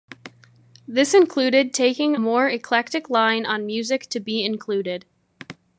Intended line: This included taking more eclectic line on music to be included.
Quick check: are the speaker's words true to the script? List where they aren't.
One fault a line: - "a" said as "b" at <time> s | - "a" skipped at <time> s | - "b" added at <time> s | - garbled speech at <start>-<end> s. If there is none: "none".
none